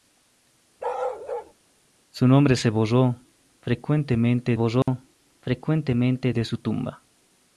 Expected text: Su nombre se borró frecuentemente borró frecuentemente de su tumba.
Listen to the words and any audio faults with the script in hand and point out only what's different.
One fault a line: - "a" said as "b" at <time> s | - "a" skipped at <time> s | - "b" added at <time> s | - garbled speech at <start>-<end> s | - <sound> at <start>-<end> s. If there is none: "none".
- bark at 0.8-1.5 s
- dropout at 4.8-4.9 s